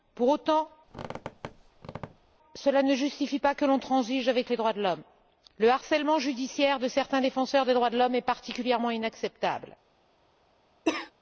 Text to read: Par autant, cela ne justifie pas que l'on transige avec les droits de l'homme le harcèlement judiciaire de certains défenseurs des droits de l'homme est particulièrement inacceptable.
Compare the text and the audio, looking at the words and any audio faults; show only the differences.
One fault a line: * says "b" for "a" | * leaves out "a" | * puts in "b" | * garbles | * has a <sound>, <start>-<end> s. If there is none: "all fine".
* says "Pour" for "Par"
* has a squeak, 0.9-2.4 s
* has a cough, 10.8-11.1 s